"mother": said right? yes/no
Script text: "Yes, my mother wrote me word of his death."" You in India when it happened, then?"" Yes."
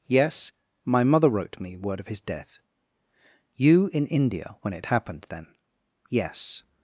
yes